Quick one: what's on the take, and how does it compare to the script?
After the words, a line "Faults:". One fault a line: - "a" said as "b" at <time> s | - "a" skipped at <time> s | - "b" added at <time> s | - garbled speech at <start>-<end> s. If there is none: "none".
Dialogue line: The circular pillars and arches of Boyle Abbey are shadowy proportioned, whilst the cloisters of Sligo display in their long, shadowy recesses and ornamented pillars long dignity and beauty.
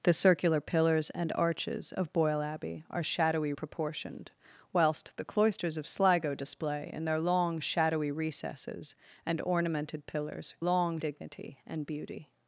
The circular pillars and arches of Boyle Abbey are shadowy proportioned, whilst the cloisters of Sligo display in their long, shadowy recesses and ornamented pillars long dignity and beauty.
Faults:
none